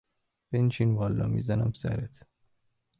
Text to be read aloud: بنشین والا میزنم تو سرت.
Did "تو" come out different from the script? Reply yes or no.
yes